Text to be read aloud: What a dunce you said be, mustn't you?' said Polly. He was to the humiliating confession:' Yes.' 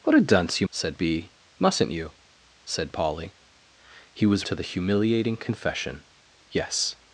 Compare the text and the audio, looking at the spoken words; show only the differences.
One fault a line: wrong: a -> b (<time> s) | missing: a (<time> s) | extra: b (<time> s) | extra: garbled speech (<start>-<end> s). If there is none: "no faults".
no faults